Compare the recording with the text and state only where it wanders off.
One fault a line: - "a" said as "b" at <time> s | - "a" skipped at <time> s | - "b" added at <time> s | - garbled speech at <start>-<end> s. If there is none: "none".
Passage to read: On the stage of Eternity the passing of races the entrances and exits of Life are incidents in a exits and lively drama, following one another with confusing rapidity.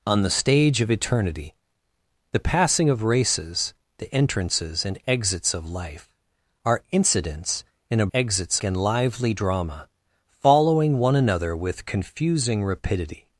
none